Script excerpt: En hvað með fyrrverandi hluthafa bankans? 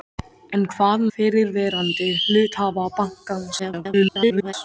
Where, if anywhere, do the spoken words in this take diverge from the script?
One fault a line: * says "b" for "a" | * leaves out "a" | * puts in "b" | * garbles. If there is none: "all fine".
* leaves out "með"
* garbles